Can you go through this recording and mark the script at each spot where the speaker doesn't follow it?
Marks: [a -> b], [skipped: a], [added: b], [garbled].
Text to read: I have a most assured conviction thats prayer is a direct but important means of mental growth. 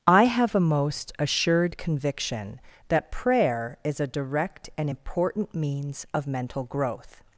I have a most assured conviction [thats -> that] prayer is a direct [but -> and] important means of mental growth.